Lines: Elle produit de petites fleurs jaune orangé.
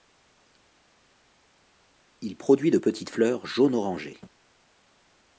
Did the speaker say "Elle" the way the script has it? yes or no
no